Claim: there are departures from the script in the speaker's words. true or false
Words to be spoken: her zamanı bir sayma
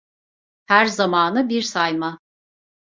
false